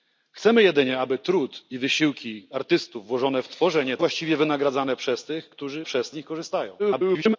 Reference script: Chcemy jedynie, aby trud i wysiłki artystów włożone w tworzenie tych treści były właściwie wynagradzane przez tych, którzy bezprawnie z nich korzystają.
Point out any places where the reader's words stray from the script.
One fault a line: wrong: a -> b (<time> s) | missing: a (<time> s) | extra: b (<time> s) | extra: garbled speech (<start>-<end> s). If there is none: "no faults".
missing: tych treści były (4.0 s)
wrong: bezprawnie -> przez (5.8 s)
extra: garbled speech (6.8-7.4 s)